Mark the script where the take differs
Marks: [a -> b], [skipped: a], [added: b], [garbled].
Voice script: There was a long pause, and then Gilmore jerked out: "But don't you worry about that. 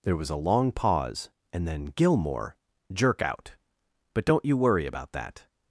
There was a long pause, and then Gilmore [jerked -> jerk] out: "But don't you worry about that.